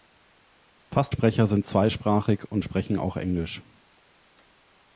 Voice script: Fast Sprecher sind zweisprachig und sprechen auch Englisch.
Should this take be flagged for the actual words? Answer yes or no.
no